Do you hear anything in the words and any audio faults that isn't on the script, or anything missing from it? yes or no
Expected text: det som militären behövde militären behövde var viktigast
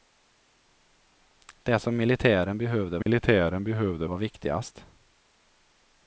yes